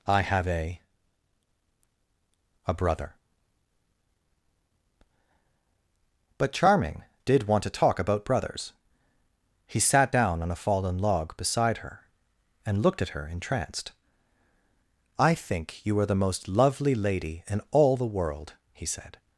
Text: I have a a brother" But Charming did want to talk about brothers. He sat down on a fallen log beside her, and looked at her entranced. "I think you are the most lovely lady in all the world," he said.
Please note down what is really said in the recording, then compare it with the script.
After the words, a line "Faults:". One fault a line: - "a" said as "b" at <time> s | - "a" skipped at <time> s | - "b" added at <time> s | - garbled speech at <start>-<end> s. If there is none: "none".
I have a a brother" But Charming did want to talk about brothers. He sat down on a fallen log beside her, and looked at her entranced. "I think you are the most lovely lady in all the world," he said.
Faults:
none